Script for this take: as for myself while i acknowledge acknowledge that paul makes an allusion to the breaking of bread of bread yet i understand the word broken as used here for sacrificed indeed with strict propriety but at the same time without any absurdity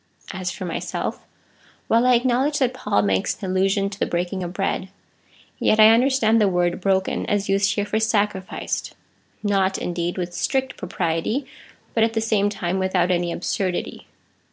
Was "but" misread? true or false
false